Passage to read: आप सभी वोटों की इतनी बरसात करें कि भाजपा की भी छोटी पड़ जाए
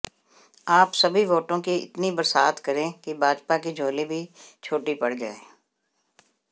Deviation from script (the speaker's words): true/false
true